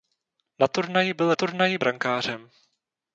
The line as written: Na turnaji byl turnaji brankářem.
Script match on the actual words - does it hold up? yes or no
yes